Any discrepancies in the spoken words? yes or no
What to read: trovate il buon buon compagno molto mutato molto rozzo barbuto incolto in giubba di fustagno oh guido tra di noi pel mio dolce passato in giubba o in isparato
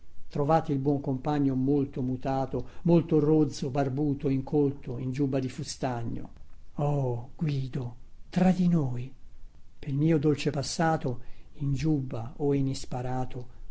yes